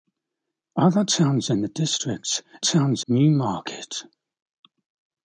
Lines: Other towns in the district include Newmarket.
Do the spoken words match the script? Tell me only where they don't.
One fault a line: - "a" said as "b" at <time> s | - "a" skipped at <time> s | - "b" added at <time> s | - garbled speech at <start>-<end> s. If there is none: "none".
- "include" said as "towns" at 2.6 s